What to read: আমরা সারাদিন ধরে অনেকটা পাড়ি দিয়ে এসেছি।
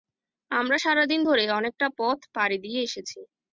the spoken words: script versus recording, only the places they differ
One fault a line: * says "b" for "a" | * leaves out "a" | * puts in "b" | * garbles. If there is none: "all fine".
* puts in "পথ"